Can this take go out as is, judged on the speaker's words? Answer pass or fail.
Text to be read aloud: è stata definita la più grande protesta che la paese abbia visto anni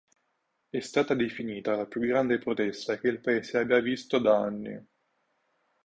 fail